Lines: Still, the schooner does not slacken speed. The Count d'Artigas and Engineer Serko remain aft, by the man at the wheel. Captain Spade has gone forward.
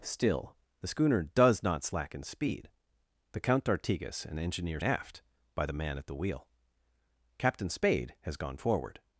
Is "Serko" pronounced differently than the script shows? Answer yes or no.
yes